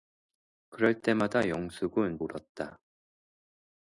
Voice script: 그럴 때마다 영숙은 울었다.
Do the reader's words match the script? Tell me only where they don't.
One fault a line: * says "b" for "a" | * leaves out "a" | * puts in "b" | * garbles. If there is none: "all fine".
all fine